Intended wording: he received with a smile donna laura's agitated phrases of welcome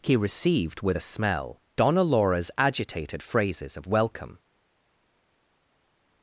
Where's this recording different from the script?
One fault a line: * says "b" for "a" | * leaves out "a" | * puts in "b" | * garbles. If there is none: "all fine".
* says "smell" for "smile"